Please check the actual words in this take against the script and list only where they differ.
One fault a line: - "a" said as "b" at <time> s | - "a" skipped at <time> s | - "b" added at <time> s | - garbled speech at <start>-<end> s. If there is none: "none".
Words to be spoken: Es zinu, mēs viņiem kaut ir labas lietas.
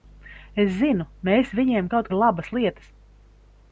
none